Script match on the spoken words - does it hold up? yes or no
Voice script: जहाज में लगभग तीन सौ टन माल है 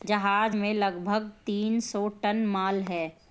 yes